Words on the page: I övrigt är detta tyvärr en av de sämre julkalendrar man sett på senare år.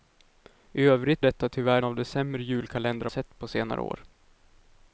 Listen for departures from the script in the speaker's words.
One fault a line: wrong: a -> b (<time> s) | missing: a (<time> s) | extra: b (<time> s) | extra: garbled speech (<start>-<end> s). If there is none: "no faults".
missing: är (1.2 s)
missing: en (1.8 s)
missing: man (3.1 s)